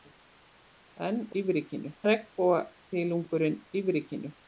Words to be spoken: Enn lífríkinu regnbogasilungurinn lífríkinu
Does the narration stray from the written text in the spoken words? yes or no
no